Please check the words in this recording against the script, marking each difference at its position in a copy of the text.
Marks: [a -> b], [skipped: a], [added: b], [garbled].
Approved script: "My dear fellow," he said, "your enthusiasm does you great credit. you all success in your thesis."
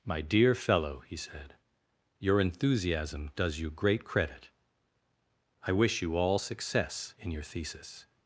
"My dear fellow," he said, "your enthusiasm does you great credit. [added: I wish] you all success in your thesis."